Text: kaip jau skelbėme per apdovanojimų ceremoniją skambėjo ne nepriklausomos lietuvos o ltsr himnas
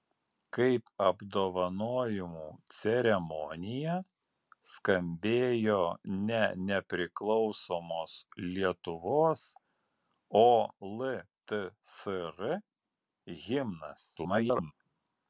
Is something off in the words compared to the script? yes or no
yes